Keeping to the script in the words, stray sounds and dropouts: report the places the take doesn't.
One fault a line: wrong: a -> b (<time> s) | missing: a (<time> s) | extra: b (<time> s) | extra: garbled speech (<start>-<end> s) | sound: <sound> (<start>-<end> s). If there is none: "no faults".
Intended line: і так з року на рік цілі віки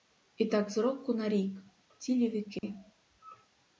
sound: dropout (2.6-2.6 s)